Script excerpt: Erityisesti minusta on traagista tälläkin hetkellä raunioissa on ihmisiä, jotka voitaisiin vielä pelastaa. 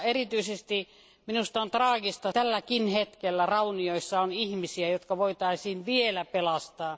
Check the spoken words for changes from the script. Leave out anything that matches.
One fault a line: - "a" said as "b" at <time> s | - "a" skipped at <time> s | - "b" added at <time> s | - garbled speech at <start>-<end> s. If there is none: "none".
none